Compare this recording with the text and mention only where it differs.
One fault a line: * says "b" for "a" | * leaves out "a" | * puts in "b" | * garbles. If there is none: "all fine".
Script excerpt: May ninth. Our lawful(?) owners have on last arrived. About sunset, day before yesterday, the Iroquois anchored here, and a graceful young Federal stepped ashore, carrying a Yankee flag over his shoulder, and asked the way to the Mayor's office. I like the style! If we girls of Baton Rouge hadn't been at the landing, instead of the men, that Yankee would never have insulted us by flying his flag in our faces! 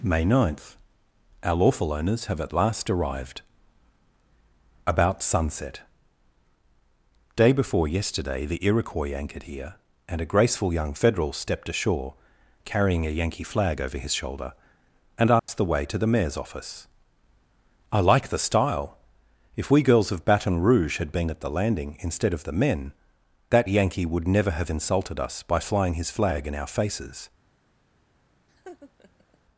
* says "at" for "on"
* says "had" for "hadn't"